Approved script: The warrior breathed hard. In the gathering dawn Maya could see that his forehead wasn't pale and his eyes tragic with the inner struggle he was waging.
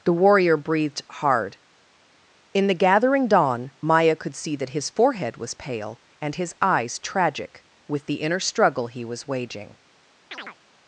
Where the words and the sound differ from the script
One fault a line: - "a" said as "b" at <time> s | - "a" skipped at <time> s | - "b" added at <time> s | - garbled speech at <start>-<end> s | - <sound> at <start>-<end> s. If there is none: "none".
- "wasn't" said as "was" at 5.4 s
- chirp at 10.3-10.6 s